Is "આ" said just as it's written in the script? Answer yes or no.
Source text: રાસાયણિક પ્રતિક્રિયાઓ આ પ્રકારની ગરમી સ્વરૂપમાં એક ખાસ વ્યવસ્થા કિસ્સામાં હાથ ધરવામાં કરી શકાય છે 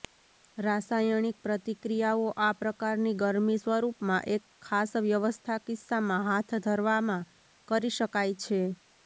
yes